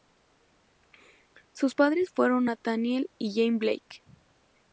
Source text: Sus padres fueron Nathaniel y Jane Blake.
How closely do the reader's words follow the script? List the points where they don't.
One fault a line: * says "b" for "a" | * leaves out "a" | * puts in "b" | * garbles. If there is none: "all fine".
all fine